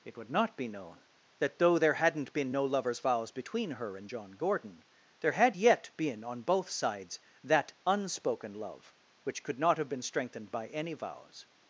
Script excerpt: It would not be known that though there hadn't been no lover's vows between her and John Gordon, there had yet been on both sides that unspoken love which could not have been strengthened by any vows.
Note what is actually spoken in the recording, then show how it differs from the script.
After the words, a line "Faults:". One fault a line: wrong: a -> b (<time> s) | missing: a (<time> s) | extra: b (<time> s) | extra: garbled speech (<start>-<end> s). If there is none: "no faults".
It would not be known that though there hadn't been no lover's vows between her and John Gordon, there had yet been on both sides that unspoken love which could not have been strengthened by any vows.
Faults:
no faults